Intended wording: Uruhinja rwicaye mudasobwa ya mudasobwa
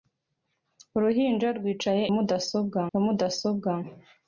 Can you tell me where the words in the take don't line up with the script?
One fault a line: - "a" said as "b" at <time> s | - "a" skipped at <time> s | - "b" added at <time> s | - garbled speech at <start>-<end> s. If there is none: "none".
none